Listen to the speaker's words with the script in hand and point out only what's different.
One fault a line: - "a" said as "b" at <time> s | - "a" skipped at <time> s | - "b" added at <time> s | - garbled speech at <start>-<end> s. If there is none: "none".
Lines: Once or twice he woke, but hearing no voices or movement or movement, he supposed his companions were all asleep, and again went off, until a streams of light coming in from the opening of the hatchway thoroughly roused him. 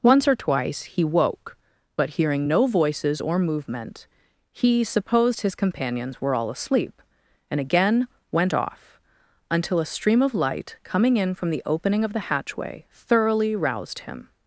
- "or movement" skipped at 4.1 s
- "streams" said as "stream" at 9.9 s